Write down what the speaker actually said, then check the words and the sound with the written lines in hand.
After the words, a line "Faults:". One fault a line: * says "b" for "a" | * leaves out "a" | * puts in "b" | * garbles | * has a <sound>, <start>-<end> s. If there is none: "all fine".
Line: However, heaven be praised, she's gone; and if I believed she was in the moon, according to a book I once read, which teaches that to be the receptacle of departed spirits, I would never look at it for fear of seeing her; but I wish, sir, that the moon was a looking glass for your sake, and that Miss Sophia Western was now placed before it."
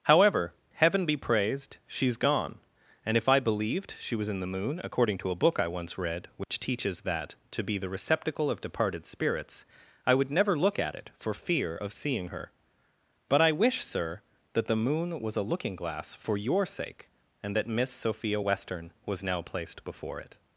However, heaven be praised, she's gone; and if I believed she was in the moon, according to a book I once read, which teaches that to be the receptacle of departed spirits, I would never look at it for fear of seeing her; but I wish, sir, that the moon was a looking glass for your sake, and that Miss Sophia Western was now placed before it."
Faults:
* has a dropout, 6.4-6.5 s